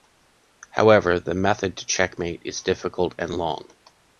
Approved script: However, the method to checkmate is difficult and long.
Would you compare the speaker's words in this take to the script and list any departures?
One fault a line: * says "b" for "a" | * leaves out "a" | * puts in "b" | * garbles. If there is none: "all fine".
all fine